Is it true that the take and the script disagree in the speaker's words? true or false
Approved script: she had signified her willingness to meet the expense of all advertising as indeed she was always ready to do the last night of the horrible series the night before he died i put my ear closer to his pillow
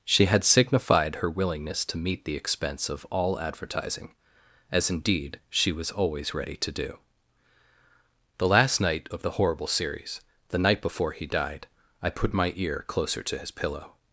false